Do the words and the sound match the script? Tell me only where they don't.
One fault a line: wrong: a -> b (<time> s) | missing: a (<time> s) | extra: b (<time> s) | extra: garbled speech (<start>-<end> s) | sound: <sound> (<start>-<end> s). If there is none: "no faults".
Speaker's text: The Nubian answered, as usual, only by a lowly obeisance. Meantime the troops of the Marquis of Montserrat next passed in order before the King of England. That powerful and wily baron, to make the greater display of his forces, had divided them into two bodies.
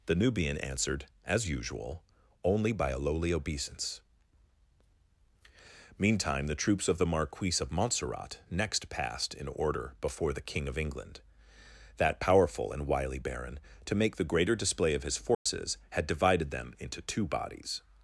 sound: dropout (15.3-15.5 s)